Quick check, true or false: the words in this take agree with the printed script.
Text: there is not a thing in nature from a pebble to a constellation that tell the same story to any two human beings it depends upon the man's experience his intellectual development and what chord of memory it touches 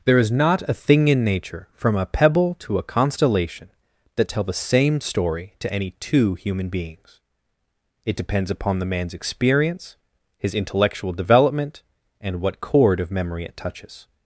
true